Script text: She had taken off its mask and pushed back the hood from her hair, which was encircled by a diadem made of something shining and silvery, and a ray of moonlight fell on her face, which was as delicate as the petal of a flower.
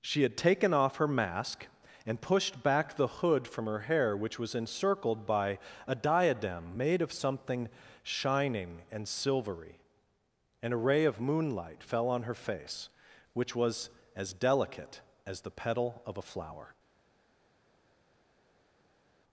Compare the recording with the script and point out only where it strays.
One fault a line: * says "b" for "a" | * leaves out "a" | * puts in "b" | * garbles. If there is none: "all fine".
* says "her" for "its"